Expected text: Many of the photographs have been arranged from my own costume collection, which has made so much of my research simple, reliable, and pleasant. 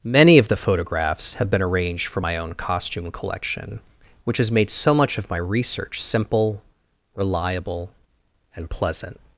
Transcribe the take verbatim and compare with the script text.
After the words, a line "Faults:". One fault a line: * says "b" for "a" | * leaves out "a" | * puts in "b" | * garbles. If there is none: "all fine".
Many of the photographs have been arranged for my own costume collection, which has made so much of my research simple, reliable, and pleasant.
Faults:
* says "for" for "from"